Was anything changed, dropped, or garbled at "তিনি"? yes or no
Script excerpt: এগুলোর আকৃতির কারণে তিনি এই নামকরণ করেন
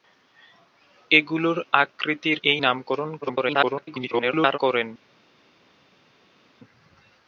yes